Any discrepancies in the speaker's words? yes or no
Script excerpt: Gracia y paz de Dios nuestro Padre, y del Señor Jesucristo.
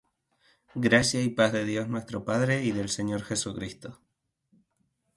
no